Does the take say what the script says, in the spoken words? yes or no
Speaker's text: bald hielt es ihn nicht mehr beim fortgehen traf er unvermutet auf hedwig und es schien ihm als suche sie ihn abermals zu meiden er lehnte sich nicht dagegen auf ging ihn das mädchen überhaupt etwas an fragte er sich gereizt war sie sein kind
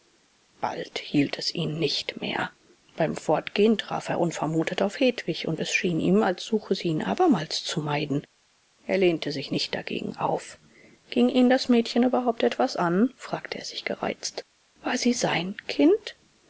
yes